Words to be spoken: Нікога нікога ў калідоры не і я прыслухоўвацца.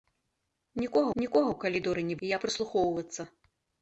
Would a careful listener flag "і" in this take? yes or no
no